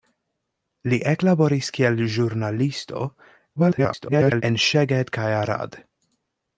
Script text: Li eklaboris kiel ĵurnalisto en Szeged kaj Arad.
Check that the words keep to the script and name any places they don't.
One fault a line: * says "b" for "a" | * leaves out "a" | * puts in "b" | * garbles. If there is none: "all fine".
* garbles